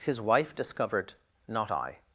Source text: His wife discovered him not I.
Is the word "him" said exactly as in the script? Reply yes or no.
no